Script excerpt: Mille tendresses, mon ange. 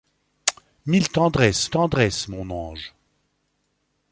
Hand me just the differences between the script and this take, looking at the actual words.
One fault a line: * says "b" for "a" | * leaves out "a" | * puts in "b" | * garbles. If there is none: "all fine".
* puts in "tendresses"